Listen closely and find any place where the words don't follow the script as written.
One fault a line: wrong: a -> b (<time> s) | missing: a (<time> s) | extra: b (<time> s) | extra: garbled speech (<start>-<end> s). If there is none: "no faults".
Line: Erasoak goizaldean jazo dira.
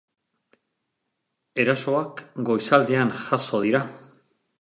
no faults